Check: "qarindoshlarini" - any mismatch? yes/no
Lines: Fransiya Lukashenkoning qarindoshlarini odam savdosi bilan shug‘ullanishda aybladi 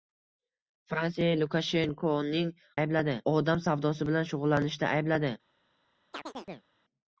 yes